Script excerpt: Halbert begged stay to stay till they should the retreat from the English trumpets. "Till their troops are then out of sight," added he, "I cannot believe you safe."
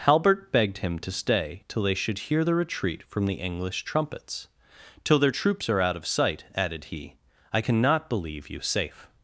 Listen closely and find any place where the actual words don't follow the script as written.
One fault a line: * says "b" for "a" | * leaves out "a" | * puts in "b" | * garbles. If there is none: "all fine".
* says "him" for "stay"
* puts in "hear"
* leaves out "then"